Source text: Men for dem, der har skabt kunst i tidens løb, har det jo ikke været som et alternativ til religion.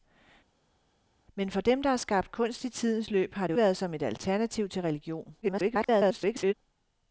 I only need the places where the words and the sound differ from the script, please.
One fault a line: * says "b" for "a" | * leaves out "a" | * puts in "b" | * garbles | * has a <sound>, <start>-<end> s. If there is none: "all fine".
* leaves out "ikke"
* garbles